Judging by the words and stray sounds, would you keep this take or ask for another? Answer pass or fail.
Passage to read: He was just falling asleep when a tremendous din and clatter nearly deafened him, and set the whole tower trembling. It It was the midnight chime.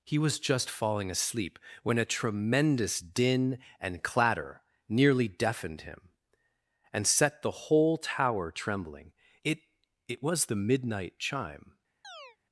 fail